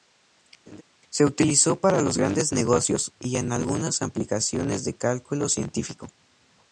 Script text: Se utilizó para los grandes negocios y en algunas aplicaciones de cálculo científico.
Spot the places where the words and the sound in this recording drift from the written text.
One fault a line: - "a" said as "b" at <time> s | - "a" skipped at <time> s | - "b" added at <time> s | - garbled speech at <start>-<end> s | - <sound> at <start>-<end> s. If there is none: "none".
- laugh at 0.7-0.8 s